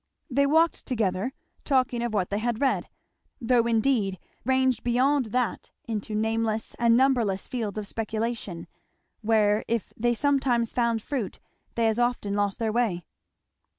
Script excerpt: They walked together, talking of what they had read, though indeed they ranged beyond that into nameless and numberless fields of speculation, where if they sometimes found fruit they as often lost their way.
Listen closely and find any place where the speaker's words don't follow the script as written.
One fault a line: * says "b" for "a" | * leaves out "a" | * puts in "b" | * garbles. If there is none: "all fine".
* leaves out "they"